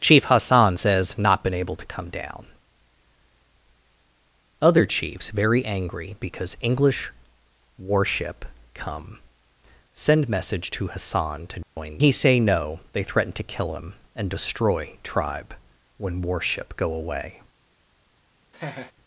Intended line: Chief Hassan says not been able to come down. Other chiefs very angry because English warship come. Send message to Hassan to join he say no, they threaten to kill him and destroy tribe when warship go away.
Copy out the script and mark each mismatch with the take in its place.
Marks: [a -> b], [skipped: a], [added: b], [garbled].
Chief Hassan says not been able to come down. Other chiefs very angry because English warship come. Send message to Hassan to join he say no, they threaten to kill him and destroy tribe when warship go away.